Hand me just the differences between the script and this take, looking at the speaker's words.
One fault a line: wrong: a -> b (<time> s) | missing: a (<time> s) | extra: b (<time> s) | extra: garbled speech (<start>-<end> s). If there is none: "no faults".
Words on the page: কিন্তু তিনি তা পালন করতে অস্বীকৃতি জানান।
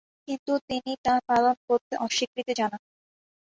no faults